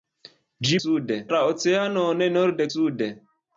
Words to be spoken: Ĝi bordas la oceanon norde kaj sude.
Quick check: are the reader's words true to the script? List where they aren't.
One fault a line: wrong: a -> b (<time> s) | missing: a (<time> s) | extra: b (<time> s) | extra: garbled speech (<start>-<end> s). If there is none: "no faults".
wrong: bordas -> sude (0.8 s)
missing: kaj (2.7 s)